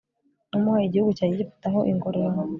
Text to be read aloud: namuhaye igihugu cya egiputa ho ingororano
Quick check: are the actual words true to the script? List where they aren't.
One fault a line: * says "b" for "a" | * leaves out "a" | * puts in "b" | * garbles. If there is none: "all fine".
all fine